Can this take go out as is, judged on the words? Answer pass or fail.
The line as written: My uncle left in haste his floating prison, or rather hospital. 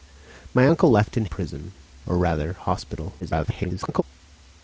fail